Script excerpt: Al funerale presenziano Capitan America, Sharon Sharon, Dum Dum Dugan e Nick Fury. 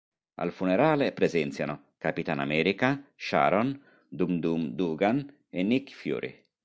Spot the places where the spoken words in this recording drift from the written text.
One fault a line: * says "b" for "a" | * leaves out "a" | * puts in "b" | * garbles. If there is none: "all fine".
* leaves out "Sharon"